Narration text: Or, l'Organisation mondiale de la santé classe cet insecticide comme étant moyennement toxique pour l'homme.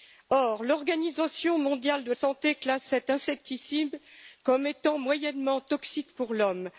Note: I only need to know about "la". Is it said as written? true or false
false